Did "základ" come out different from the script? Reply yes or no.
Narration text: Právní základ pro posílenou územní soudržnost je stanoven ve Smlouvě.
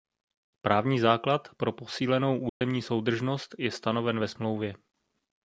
no